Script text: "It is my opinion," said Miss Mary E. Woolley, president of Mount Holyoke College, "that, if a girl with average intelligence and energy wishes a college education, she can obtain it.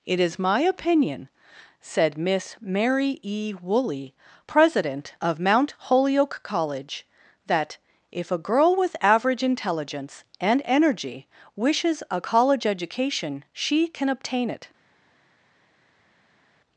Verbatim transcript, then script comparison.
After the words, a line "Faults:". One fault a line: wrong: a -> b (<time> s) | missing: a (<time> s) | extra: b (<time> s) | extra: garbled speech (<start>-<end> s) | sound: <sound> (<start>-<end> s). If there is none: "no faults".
"It is my opinion," said Miss Mary E. Woolley, president of Mount Holyoke College, "that, if a girl with average intelligence and energy wishes a college education, she can obtain it.
Faults:
no faults